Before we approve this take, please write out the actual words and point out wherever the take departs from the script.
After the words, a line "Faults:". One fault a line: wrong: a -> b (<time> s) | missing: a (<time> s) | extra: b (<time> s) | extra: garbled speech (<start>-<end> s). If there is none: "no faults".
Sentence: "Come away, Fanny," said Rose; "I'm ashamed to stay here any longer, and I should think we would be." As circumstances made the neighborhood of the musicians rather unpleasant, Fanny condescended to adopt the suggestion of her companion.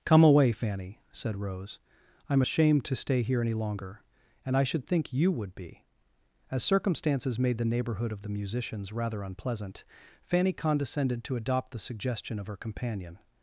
"Come away, Fanny," said Rose; "I'm ashamed to stay here any longer, and I should think you would be." As circumstances made the neighborhood of the musicians rather unpleasant, Fanny condescended to adopt the suggestion of her companion.
Faults:
wrong: we -> you (5.1 s)